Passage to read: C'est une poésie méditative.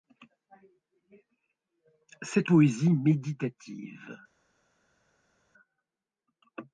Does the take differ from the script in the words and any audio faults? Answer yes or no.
yes